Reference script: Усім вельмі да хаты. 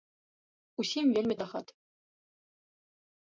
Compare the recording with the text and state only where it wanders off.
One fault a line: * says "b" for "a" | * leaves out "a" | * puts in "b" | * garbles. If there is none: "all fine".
all fine